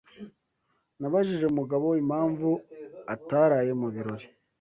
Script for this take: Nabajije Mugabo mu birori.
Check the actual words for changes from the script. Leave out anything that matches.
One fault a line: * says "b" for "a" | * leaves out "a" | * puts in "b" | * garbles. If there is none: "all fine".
* puts in "impamvu ataraye"